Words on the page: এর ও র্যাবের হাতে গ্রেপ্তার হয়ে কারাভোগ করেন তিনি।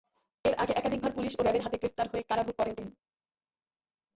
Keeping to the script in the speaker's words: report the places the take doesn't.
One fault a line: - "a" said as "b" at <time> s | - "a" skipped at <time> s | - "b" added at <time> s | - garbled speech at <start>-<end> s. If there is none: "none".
- "আগে একাধিকবার পুলিশ" added at 0.6 s